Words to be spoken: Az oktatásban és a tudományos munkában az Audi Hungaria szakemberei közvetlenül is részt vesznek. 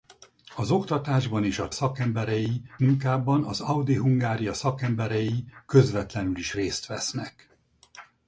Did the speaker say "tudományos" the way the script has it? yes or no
no